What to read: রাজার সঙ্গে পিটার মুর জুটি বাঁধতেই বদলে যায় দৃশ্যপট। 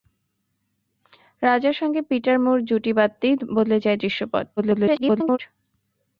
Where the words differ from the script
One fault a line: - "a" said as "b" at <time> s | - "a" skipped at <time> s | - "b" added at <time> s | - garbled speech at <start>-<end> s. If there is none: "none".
- garbled speech at 4.6-5.4 s